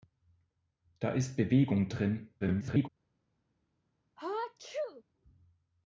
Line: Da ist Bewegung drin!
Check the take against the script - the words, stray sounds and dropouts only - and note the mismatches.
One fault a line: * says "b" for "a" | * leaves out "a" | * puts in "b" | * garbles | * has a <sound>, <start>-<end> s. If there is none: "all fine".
* garbles
* has a sneeze, 4.2-5.0 s